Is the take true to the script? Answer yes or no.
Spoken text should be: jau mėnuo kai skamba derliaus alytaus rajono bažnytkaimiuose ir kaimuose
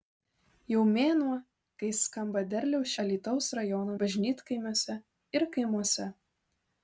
yes